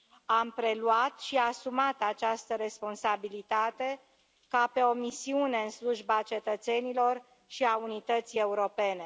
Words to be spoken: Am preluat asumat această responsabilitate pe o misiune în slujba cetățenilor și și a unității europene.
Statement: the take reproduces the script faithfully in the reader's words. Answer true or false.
false